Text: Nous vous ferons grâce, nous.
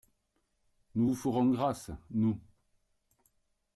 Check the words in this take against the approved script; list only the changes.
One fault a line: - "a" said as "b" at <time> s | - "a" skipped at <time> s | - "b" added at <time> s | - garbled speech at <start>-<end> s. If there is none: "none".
none